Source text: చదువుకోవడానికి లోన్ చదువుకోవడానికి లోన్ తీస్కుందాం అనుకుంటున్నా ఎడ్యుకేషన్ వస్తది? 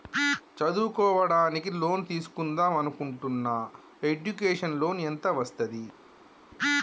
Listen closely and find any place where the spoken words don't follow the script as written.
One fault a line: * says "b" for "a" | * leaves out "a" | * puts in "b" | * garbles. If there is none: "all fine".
* leaves out "చదువుకోవడానికి లోన్"
* puts in "లోన్ ఎంత"